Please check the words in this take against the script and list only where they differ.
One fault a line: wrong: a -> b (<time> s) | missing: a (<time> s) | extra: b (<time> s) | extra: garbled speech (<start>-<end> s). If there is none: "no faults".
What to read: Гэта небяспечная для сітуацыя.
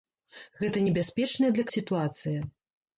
no faults